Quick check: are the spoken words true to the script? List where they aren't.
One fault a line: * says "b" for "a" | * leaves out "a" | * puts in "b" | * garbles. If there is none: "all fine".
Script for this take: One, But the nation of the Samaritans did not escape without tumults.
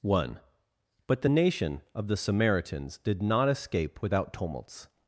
all fine